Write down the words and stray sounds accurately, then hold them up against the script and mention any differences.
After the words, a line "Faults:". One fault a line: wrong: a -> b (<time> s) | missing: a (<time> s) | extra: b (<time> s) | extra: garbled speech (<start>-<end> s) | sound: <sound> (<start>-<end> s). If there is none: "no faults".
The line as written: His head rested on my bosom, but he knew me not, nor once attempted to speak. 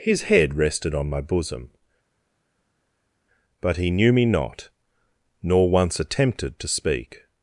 His head rested on my bosom, but he knew me not, nor once attempted to speak.
Faults:
no faults